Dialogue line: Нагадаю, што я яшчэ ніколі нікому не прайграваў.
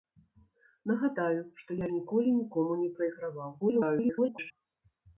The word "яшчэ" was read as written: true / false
false